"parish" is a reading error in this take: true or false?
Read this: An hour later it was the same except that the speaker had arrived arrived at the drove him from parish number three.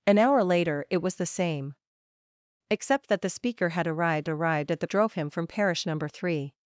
false